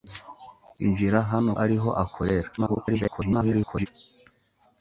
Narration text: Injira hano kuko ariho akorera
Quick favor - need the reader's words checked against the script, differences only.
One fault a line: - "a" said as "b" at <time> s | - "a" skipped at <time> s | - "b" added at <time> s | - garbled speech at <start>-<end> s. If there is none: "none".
- "kuko" skipped at 1.5 s
- garbled speech at 2.6-3.9 s